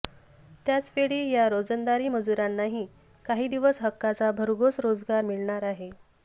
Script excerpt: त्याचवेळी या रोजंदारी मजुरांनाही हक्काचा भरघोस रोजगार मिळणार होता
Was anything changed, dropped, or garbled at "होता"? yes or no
yes